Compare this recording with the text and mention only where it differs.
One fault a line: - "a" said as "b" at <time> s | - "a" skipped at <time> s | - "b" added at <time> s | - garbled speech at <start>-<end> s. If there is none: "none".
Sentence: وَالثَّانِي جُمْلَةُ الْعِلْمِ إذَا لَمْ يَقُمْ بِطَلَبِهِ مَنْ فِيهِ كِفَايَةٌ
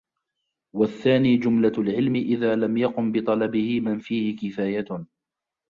none